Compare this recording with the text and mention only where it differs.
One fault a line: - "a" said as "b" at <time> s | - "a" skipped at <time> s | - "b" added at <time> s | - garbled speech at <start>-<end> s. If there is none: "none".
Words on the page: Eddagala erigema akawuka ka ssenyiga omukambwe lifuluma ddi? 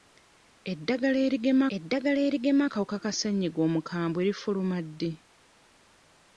- "eddagala erigema" added at 1.8 s